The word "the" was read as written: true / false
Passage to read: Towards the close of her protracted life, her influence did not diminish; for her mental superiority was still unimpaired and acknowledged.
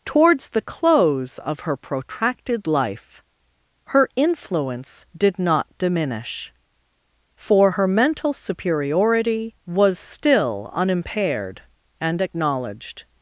true